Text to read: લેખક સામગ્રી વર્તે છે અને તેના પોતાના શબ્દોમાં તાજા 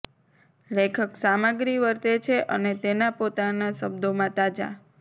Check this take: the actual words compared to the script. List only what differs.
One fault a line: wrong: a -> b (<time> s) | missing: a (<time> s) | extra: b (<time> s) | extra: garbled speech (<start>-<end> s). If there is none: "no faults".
no faults